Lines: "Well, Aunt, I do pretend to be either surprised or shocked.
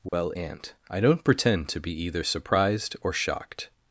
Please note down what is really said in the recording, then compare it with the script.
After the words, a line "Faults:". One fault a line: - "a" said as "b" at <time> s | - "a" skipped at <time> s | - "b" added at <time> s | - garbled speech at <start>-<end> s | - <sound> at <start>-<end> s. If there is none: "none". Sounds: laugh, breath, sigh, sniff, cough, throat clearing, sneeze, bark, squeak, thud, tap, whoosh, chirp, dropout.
"Well, Aunt, I don't pretend to be either surprised or shocked.
Faults:
- dropout at 0.1-0.1 s
- "do" said as "don't" at 1.0 s